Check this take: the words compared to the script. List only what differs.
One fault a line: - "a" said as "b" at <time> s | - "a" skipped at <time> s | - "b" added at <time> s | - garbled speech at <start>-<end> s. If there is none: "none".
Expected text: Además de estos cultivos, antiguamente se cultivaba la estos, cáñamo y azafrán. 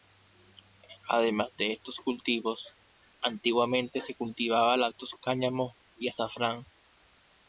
none